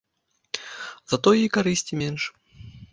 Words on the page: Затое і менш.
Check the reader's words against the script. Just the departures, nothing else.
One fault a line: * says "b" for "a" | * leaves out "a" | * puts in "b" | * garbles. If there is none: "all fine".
* puts in "карысці"